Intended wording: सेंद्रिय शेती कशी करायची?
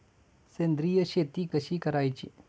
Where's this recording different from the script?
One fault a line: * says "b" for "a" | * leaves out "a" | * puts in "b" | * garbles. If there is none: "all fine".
all fine